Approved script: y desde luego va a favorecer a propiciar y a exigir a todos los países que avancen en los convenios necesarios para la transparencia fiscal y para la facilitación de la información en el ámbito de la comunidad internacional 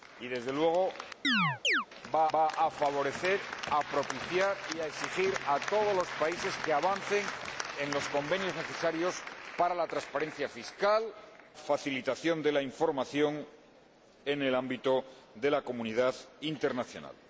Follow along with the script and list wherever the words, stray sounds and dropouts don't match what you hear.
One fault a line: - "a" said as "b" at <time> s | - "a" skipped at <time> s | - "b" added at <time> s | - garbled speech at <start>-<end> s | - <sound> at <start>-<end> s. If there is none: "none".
- chirp at 1.2-1.9 s
- "va" added at 2.3 s
- "y para la" skipped at 11.1 s